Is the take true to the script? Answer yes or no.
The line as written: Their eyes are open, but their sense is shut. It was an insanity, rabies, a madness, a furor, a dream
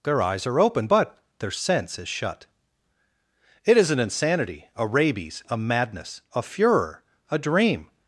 no